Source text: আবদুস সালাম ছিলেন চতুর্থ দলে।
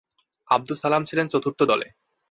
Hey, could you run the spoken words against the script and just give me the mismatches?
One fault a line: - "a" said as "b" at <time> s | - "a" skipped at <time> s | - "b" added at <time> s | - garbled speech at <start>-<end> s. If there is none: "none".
none